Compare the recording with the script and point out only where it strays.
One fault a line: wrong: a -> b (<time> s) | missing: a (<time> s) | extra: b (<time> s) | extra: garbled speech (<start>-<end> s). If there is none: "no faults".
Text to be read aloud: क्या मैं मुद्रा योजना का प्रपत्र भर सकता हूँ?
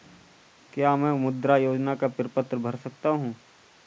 no faults